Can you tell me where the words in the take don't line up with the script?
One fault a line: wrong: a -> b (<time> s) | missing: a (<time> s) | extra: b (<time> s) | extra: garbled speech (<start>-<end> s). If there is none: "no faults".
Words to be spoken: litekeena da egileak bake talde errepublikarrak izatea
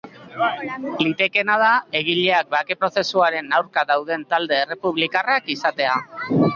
extra: prozesuaren aurka dauden (2.8 s)